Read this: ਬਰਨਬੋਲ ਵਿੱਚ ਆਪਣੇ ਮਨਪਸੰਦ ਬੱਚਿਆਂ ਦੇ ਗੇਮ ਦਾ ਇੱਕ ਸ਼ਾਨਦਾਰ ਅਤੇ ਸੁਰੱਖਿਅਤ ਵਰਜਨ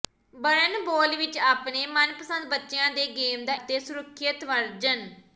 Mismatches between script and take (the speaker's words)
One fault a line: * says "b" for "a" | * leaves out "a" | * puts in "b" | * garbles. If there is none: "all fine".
* leaves out "ਇੱਕ ਸ਼ਾਨਦਾਰ"